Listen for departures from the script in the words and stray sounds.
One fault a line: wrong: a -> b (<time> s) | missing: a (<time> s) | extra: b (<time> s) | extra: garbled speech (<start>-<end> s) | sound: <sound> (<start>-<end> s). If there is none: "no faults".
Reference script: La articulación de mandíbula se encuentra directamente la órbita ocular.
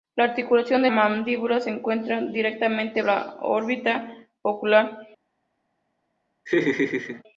sound: laugh (6.5-7.2 s)